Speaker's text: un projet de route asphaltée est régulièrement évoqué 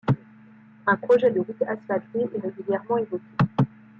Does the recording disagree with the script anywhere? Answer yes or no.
no